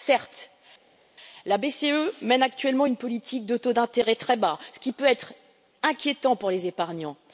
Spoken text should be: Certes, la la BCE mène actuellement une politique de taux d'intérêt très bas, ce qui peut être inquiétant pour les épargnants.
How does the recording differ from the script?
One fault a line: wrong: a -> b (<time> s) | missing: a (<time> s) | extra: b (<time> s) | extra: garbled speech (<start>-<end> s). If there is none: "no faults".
missing: la (1.6 s)